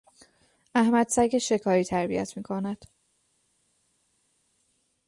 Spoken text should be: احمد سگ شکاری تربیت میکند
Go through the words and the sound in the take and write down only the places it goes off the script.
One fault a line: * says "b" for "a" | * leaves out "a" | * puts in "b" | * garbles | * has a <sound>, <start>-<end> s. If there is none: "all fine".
all fine